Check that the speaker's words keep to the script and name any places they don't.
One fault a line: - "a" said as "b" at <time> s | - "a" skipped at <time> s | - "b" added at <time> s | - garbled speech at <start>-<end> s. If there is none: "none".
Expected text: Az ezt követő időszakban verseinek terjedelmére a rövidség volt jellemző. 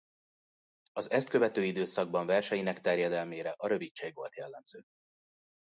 none